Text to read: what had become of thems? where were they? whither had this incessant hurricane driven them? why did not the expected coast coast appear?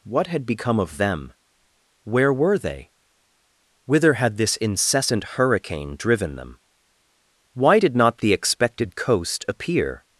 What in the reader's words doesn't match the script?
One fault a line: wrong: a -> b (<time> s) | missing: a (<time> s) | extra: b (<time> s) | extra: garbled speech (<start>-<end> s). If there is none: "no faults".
wrong: thems -> them (1.0 s)
missing: coast (9.4 s)